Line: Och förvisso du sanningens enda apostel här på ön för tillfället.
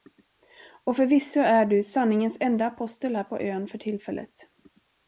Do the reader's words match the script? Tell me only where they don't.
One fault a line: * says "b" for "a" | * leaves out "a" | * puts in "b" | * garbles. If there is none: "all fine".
* puts in "är"